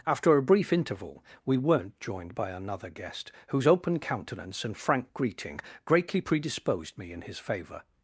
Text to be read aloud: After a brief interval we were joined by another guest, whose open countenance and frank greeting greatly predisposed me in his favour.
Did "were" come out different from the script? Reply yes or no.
yes